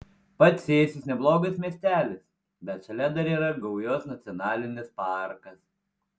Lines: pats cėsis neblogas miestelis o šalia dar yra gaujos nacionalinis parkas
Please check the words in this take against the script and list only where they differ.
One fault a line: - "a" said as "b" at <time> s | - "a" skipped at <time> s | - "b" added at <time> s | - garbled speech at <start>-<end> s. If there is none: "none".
- "o" said as "bet" at 2.7 s